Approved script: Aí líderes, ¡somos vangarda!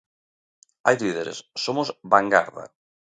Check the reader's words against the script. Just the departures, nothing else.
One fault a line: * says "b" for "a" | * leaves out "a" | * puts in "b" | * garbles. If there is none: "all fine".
all fine